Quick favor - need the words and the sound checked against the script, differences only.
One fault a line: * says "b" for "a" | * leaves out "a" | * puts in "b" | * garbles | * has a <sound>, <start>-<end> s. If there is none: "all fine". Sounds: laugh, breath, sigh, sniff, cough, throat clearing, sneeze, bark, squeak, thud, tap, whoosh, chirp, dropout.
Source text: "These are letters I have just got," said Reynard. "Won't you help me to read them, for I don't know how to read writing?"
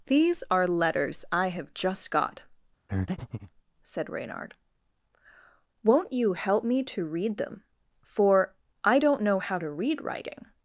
* has a breath, 2.9-3.5 s